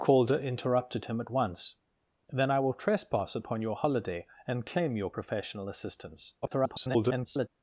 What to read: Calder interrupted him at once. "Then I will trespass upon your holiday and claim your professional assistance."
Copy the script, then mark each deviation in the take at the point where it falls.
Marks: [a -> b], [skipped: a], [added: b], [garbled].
Calder interrupted him at once. "Then I will trespass upon your holiday and claim your professional assistance." [garbled]